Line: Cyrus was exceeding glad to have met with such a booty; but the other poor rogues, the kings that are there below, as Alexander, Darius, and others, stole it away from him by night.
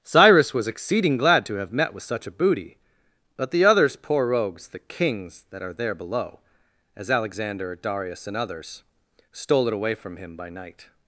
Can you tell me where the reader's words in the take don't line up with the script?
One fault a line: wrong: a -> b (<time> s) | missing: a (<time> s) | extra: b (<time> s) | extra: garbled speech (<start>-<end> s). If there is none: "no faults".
wrong: other -> others (3.6 s)